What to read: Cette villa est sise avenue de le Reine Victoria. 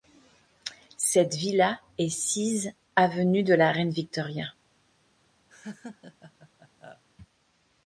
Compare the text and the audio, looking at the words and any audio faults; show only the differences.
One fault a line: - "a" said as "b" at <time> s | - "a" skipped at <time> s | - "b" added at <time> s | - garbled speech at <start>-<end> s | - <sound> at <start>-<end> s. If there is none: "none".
- "le" said as "la" at 3.5 s
- laugh at 5.5-7.0 s